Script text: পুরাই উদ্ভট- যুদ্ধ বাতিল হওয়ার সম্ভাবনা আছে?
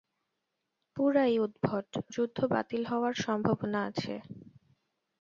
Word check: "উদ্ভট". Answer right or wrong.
right